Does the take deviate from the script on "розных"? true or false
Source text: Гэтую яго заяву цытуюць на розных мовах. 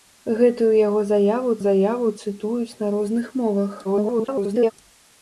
false